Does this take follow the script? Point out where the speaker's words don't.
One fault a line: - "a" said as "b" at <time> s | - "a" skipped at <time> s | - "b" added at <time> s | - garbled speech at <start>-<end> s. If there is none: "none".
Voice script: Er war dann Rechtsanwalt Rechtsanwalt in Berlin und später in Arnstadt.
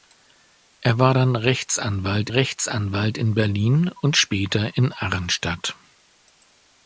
none